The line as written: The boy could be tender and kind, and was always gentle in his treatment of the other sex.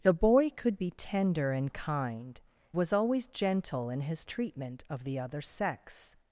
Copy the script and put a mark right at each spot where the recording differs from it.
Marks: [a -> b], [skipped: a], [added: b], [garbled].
The boy could be tender and kind, [skipped: and] was always gentle in his treatment of the other sex.